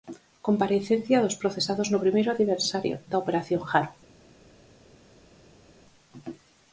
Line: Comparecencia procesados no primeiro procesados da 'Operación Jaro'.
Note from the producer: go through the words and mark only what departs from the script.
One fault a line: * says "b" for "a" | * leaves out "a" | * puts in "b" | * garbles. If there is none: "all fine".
* puts in "dos"
* says "aniversario" for "procesados"